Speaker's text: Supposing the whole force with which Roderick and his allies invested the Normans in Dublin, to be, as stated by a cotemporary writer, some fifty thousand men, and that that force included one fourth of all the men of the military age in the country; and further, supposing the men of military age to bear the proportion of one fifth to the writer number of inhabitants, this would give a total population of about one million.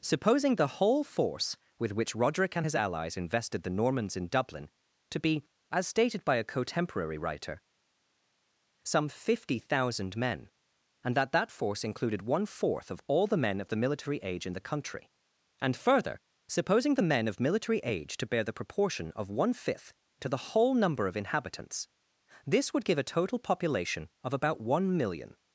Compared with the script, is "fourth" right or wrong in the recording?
right